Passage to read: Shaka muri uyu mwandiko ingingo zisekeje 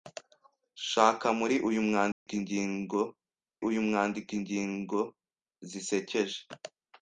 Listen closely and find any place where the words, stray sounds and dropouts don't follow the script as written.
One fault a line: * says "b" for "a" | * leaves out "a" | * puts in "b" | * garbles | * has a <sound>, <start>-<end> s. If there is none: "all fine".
* has a dropout, 2.1-2.3 s
* puts in "uyu mwandiko ingingo"